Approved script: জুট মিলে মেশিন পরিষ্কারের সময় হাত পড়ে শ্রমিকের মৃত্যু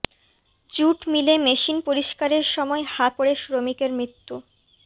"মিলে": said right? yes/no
yes